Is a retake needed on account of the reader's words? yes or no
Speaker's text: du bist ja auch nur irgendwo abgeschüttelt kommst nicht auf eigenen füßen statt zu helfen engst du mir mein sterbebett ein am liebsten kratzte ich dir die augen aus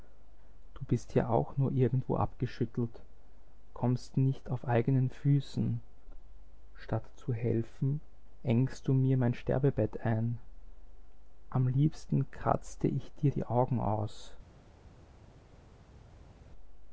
no